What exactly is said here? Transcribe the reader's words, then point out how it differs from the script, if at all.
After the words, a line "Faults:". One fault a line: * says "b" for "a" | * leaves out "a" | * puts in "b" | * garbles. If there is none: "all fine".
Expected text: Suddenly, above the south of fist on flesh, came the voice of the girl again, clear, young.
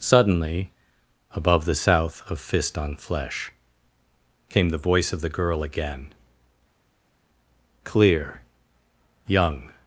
Suddenly, above the south of fist on flesh, came the voice of the girl again, clear, young.
Faults:
all fine